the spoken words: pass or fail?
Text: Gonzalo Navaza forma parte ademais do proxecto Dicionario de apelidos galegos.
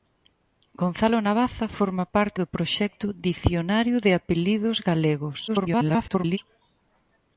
fail